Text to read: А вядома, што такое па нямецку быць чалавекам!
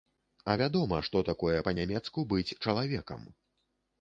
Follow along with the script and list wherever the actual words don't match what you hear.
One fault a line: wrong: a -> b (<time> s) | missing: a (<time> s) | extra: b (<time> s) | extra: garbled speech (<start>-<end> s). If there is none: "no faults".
no faults